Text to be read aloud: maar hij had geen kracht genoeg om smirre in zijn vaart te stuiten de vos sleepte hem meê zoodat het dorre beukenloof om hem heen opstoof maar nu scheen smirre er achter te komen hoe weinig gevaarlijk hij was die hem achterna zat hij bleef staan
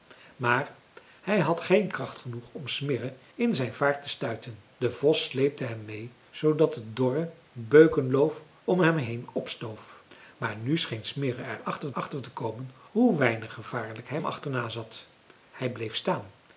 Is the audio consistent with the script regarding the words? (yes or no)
no